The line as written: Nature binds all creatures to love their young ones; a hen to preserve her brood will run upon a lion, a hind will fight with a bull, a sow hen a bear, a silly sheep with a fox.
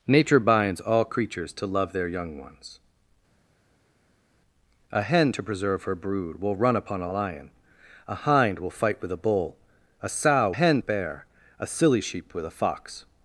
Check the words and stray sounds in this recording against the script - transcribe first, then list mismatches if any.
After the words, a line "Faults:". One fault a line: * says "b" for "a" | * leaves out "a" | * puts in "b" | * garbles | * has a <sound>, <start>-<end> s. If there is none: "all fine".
Nature binds all creatures to love their young ones; a hen to preserve her brood will run upon a lion, a hind will fight with a bull, a sow hen a bear, a silly sheep with a fox.
Faults:
all fine